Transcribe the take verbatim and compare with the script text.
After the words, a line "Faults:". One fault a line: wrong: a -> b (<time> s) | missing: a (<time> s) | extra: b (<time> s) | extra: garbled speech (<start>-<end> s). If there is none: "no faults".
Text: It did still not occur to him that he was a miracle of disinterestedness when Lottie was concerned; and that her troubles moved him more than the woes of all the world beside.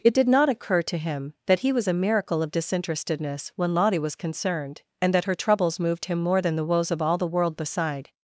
It did not occur to him that he was a miracle of disinterestedness when Lottie was concerned; and that her troubles moved him more than the woes of all the world beside.
Faults:
missing: still (0.3 s)